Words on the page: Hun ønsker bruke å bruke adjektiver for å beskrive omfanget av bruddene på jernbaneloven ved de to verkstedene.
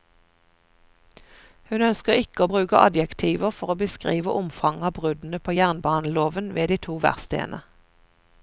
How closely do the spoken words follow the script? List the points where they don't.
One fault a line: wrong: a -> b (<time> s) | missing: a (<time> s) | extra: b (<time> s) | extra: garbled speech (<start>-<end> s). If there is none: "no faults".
wrong: bruke -> ikke (2.2 s)